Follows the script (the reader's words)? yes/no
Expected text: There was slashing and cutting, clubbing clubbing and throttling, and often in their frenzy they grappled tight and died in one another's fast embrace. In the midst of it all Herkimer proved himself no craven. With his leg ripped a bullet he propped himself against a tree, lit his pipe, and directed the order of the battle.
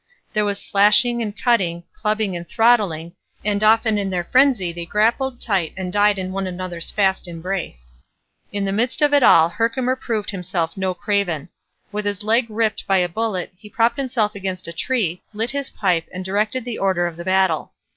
no